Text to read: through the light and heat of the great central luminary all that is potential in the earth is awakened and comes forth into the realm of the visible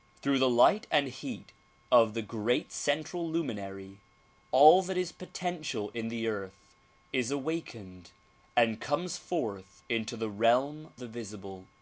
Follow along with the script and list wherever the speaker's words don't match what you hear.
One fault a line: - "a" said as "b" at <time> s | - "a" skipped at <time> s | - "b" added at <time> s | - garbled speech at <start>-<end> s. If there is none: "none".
- "of" skipped at 10.9 s